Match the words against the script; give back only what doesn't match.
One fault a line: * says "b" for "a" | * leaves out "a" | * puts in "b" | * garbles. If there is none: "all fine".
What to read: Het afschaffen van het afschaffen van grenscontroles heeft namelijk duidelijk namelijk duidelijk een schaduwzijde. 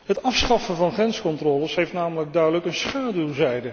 * leaves out "het afschaffen van"
* leaves out "namelijk duidelijk"